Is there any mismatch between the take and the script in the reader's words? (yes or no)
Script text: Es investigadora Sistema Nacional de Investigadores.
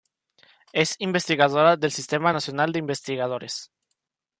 yes